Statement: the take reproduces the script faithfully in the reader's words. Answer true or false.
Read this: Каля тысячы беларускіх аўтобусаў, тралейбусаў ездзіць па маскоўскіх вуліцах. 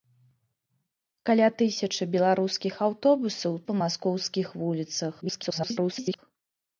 false